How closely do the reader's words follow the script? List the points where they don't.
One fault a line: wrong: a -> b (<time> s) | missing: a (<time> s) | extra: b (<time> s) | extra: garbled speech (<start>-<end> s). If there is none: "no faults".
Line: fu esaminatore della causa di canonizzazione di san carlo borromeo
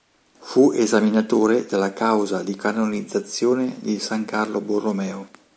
no faults